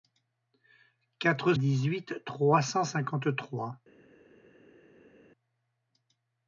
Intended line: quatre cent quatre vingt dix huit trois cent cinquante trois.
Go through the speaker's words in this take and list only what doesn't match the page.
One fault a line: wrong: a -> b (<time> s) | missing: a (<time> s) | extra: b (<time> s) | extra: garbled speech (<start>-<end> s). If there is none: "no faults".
missing: cent quatre vingt (1.5 s)